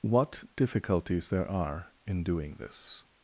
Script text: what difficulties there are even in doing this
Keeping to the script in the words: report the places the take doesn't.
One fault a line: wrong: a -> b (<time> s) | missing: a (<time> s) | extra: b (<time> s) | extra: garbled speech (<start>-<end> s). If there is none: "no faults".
missing: even (1.9 s)